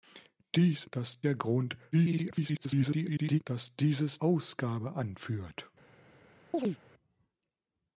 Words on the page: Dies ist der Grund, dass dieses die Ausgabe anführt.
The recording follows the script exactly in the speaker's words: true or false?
false